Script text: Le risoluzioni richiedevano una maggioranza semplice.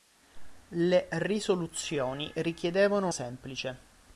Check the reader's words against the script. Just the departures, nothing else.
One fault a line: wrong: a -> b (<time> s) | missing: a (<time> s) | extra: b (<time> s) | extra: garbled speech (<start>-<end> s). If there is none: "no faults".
missing: una maggioranza (3.1 s)